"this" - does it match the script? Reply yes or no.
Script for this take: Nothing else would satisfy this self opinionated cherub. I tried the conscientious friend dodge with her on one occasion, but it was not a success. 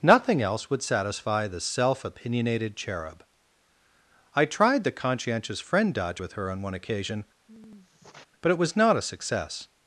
no